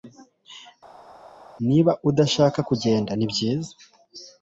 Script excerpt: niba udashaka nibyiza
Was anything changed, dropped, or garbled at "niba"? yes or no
no